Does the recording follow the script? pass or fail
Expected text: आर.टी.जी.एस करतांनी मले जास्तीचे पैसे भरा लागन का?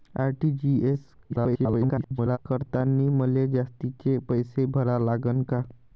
fail